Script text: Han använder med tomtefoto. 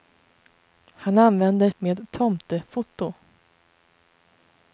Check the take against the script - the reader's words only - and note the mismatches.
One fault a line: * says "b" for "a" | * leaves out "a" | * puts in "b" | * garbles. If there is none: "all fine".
all fine